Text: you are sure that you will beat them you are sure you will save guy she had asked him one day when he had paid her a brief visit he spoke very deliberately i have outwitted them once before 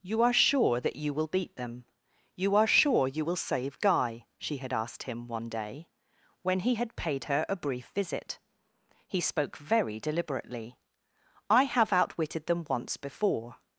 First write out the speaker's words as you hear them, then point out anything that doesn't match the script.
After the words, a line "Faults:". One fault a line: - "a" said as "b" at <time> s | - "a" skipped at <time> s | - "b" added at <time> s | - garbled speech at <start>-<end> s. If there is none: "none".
you are sure that you will beat them you are sure you will save guy she had asked him one day when he had paid her a brief visit he spoke very deliberately i have outwitted them once before
Faults:
none